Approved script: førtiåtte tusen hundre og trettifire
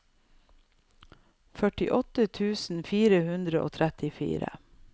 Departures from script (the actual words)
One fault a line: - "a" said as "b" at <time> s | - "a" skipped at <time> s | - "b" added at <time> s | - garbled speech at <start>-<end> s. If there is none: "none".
- "fire" added at 2.9 s